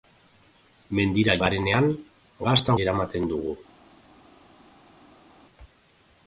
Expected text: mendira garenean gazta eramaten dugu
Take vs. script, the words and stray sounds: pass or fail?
pass